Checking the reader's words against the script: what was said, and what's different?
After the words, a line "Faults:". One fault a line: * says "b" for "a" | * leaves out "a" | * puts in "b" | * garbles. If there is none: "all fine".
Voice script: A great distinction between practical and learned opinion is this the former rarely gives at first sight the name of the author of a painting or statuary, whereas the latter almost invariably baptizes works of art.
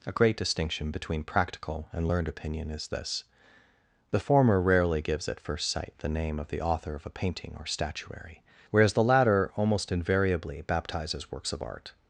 A great distinction between practical and learned opinion is this the former rarely gives at first sight the name of the author of a painting or statuary, whereas the latter almost invariably baptizes works of art.
Faults:
all fine